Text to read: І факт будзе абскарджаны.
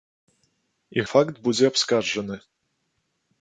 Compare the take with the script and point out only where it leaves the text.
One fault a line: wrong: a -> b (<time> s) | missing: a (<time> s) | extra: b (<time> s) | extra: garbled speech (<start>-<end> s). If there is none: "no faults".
no faults